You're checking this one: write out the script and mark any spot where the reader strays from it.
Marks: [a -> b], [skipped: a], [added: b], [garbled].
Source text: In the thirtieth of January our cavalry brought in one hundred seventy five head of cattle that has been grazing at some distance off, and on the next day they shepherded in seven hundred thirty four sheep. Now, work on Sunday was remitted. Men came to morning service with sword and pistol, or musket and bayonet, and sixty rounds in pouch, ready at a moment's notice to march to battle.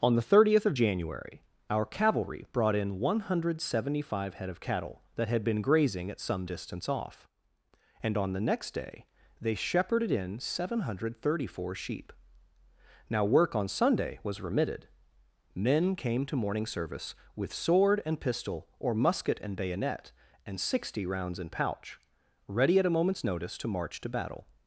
[In -> On] the thirtieth of January our cavalry brought in one hundred seventy five head of cattle that [has -> had] been grazing at some distance off, and on the next day they shepherded in seven hundred thirty four sheep. Now, work on Sunday was remitted. Men came to morning service with sword and pistol, or musket and bayonet, and sixty rounds in pouch, ready at a moment's notice to march to battle.